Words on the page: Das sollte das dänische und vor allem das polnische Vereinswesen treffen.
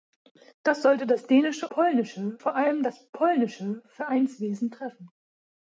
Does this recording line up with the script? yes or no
no